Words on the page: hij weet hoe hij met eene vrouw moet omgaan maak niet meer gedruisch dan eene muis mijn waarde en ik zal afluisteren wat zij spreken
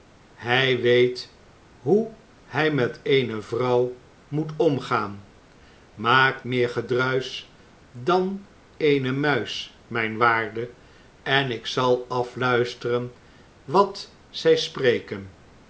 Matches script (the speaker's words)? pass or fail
fail